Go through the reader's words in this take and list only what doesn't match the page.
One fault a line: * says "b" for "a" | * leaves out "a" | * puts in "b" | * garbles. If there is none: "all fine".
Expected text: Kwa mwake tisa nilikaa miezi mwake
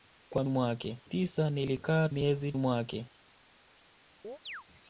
all fine